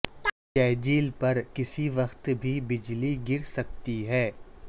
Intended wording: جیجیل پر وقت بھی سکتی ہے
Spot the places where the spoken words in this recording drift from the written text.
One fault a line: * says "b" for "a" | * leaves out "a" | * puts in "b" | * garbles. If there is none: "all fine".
* puts in "کسی"
* puts in "بجلی گر"